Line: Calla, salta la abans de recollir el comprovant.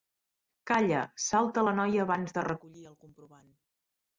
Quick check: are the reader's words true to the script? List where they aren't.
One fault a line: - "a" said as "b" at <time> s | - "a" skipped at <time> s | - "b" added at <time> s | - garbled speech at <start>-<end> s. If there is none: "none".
- "noia" added at 1.8 s